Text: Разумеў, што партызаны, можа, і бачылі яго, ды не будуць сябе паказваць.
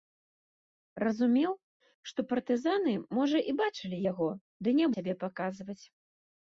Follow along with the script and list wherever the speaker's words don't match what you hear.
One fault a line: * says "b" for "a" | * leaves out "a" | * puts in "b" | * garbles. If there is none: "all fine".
* leaves out "будуць"